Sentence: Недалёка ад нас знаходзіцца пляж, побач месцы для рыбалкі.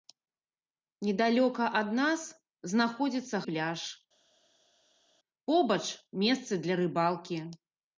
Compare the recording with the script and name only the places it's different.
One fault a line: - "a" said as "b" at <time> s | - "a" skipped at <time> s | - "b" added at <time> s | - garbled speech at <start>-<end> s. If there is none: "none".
none